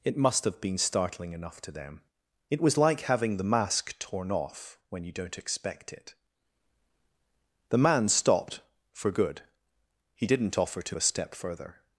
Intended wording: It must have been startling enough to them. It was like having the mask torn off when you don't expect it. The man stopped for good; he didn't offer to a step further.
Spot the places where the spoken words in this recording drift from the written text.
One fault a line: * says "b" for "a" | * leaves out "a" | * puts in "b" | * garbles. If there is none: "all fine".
all fine